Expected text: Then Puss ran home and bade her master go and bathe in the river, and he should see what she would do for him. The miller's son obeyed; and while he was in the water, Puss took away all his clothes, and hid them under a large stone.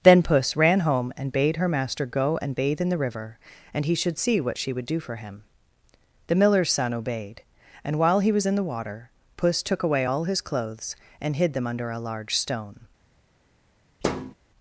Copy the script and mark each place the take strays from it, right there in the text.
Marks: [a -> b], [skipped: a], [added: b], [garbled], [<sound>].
Then Puss ran home and bade her master go and bathe in the river, and he should see what she would do for him. The miller's son obeyed; and while he was in the water, Puss took away all his clothes, and hid them under a large stone. [thud]